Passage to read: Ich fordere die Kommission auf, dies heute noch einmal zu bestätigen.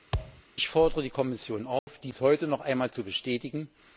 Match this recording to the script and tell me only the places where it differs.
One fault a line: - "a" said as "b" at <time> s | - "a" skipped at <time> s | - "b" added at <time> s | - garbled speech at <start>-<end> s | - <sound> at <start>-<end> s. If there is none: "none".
- thud at 0.1-0.4 s
- dropout at 1.8-1.9 s